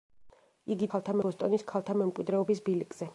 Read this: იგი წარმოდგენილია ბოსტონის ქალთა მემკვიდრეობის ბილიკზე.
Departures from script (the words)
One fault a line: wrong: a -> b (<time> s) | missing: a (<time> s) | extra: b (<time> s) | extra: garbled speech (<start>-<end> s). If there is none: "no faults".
wrong: წარმოდგენილია -> ქალთა (0.9 s)